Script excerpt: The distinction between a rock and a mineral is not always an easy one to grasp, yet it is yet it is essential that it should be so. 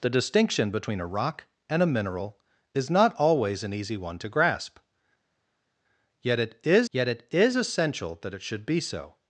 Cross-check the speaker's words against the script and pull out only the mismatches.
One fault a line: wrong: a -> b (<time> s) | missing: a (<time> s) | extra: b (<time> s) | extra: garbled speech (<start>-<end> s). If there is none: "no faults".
no faults